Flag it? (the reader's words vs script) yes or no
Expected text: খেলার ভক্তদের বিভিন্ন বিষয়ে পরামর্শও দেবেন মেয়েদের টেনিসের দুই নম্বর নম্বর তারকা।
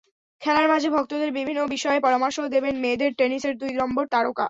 yes